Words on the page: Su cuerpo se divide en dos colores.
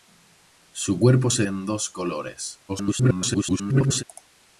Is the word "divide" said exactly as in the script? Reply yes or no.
no